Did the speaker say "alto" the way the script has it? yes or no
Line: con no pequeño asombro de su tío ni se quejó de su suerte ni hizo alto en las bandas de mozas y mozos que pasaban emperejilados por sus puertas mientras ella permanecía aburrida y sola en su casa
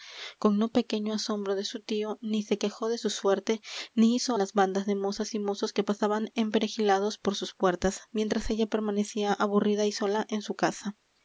no